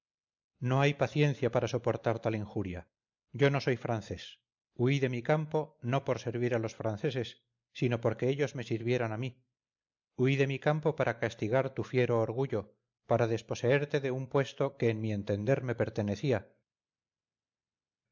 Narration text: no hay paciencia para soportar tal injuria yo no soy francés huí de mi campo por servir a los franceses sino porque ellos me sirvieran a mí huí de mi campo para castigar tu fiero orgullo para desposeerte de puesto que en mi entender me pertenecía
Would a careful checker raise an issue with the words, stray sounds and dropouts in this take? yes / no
yes